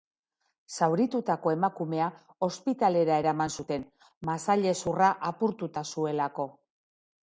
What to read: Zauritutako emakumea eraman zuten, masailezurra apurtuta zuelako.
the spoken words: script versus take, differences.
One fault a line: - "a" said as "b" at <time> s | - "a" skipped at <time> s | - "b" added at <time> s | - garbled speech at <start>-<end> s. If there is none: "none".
- "ospitalera" added at 2.5 s